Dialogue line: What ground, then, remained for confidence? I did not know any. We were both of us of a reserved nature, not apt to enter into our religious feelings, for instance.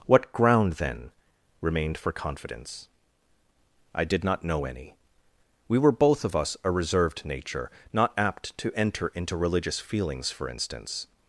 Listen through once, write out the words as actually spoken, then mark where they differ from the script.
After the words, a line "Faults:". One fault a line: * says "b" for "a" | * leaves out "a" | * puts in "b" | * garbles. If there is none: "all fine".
What ground, then, remained for confidence? I did not know any. We were both of us a reserved nature, not apt to enter into religious feelings, for instance.
Faults:
* leaves out "of"
* leaves out "our"